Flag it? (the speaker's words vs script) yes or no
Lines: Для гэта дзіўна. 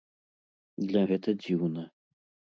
no